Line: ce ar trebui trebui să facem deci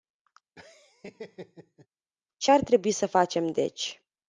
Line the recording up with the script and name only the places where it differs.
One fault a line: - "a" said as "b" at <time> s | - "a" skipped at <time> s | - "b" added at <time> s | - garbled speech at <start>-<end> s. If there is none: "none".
- "trebui" skipped at 2.9 s